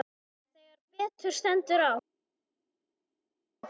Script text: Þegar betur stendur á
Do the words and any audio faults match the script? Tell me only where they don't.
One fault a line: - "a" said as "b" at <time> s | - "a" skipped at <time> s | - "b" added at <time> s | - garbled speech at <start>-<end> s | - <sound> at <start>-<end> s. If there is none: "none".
none